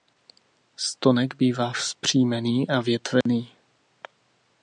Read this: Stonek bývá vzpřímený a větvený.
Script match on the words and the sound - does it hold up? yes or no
no